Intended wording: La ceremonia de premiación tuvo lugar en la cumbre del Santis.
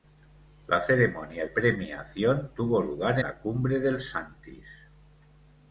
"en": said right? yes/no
no